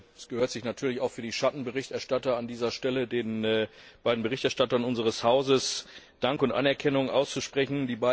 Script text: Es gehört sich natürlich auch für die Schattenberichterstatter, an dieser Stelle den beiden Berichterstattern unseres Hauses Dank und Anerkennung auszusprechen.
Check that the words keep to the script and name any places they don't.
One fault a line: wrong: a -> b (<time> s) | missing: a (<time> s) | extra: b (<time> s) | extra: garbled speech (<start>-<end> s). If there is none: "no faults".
no faults